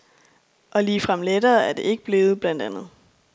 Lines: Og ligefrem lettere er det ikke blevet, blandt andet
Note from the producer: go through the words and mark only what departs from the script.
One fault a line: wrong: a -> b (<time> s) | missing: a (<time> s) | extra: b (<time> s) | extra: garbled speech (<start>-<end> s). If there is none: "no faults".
no faults